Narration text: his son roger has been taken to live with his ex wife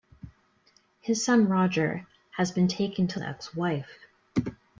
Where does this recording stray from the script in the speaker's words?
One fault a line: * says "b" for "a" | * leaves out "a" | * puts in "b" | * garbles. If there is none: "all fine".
* leaves out "live with his"